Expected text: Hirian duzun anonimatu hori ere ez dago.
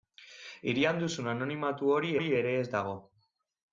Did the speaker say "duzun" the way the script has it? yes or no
yes